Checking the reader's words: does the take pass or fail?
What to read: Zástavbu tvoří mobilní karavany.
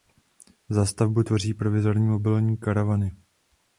fail